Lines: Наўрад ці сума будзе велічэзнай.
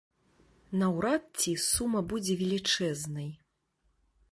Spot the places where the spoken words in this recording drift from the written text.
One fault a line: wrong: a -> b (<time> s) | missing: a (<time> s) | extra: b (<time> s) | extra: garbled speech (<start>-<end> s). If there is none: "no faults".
no faults